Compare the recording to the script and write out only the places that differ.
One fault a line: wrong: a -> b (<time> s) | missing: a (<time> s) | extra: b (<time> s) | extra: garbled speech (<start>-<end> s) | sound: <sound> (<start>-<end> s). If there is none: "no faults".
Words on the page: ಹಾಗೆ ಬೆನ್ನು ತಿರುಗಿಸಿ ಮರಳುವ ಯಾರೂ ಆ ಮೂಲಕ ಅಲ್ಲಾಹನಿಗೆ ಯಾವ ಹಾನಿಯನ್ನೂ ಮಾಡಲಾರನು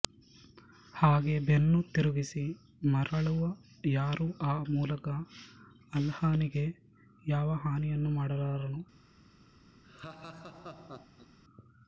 sound: laugh (9.8-11.4 s)